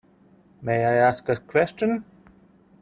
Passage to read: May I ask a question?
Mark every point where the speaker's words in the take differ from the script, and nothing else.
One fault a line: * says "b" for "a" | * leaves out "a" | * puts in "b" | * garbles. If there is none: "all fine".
all fine